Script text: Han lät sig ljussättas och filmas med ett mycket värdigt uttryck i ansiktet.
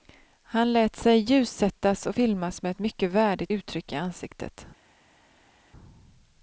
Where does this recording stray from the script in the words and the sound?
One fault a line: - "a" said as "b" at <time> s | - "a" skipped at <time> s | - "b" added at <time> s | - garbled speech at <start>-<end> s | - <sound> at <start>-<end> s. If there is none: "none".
none